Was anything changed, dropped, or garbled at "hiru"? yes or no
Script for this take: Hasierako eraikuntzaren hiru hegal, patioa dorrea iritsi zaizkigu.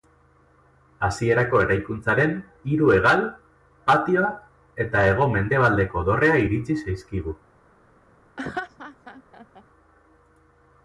no